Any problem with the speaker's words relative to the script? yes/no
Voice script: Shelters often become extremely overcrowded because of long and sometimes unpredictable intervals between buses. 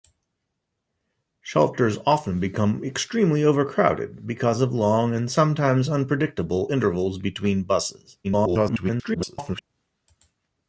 yes